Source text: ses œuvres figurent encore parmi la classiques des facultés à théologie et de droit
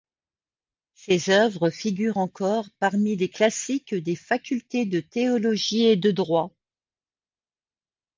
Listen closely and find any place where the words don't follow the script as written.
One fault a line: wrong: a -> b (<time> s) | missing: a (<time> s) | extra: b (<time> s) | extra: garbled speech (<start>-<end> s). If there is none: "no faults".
wrong: la -> les (3.2 s)
wrong: à -> de (4.8 s)